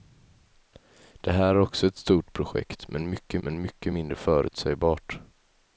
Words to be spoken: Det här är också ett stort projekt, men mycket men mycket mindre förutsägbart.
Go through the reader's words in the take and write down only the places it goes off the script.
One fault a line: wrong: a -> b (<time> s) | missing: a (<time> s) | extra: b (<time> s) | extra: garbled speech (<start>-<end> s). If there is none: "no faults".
no faults